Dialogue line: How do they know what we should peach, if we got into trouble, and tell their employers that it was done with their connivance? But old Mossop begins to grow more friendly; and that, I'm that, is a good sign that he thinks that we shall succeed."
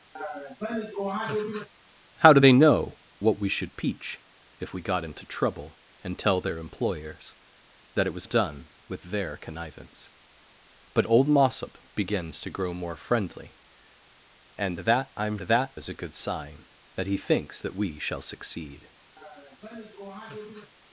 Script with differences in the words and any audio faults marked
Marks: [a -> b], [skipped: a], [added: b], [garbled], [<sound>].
[laugh] How do they know what we should peach, if we got into trouble, and tell their employers that it was done with their connivance? But old Mossop begins to grow more friendly; and that, I'm that, is a good sign that he thinks that we shall succeed." [laugh]